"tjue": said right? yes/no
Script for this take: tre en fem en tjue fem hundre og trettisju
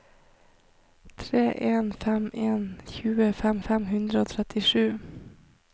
yes